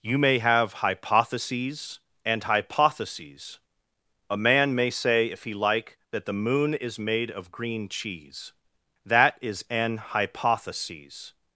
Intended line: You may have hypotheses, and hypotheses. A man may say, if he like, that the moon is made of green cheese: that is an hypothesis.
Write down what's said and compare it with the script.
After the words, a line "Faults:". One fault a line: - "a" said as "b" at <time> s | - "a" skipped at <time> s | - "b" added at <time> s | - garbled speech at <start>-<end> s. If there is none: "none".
You may have hypotheses, and hypotheses. A man may say, if he like, that the moon is made of green cheese: that is an hypothesis.
Faults:
none